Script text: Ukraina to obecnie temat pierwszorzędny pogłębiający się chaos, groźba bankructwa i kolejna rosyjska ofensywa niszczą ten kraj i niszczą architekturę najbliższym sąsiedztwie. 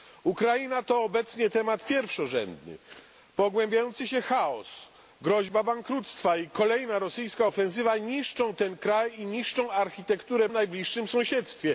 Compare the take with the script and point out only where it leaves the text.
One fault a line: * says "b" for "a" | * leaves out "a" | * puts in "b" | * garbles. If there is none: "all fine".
all fine